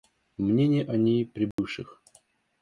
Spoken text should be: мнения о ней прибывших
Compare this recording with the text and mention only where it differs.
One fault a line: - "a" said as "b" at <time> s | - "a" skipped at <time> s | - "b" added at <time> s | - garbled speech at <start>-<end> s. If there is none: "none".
none